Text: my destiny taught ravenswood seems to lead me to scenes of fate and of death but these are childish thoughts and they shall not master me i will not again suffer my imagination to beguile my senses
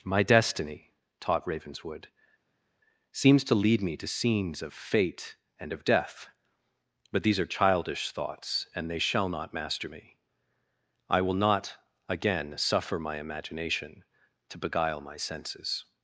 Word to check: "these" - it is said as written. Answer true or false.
true